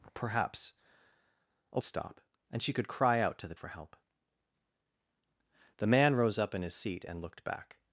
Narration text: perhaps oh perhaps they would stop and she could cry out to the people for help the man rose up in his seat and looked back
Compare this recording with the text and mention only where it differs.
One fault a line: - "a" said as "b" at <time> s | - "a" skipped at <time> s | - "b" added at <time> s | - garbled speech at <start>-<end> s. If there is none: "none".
- "perhaps they would" skipped at 1.8 s
- "people" skipped at 3.5 s